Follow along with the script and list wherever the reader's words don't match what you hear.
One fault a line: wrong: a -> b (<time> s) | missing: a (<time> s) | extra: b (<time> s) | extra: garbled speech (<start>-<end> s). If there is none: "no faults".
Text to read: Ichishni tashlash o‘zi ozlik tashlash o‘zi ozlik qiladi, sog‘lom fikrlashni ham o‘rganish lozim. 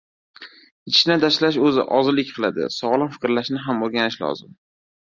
missing: tashlash o‘zi ozlik (2.3 s)